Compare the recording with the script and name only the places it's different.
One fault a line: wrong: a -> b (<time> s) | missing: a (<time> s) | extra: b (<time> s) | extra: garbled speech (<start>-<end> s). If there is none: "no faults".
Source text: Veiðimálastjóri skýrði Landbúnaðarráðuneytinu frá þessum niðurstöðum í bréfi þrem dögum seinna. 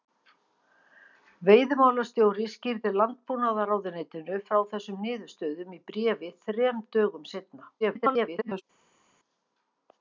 extra: garbled speech (7.8-8.6 s)